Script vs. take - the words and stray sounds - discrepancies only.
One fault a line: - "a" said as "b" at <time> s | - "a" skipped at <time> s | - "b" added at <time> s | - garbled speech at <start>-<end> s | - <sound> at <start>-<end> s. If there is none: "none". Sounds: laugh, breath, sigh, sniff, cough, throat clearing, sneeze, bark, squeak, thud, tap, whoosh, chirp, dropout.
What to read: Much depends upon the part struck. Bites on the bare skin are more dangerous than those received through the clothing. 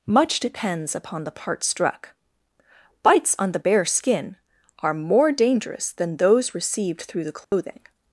- dropout at 7.4-7.5 s